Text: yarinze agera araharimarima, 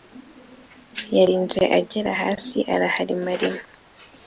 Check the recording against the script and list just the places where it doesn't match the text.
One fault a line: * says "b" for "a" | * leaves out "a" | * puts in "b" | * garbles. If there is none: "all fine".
* puts in "hasi"